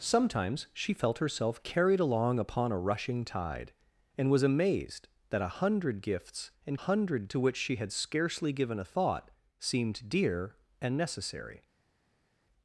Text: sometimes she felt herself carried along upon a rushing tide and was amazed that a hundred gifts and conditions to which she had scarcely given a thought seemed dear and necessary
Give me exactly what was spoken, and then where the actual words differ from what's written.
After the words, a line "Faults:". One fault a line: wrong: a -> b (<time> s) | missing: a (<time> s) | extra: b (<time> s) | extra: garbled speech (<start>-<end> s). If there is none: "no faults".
sometimes she felt herself carried along upon a rushing tide and was amazed that a hundred gifts and hundred to which she had scarcely given a thought seemed dear and necessary
Faults:
wrong: conditions -> hundred (6.7 s)